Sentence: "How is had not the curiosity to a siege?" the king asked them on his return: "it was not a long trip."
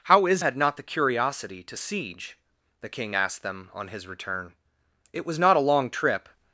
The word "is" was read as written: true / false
true